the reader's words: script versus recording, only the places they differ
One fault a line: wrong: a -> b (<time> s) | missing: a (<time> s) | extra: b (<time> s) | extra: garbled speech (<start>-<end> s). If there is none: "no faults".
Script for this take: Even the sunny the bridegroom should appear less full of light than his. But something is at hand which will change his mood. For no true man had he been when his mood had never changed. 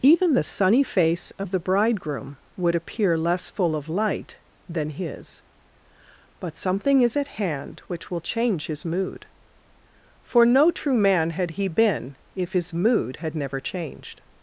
extra: face of (0.8 s)
wrong: should -> would (2.6 s)
wrong: when -> if (12.3 s)